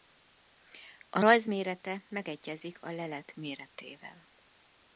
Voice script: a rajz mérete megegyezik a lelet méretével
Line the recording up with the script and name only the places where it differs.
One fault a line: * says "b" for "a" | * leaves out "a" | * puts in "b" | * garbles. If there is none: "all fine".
all fine